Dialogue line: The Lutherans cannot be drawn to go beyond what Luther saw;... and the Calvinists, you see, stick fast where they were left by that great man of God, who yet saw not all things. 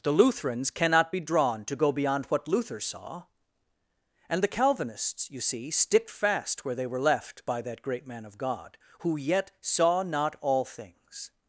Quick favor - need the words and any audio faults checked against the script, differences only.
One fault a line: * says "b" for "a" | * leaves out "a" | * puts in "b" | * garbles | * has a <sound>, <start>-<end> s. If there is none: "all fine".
all fine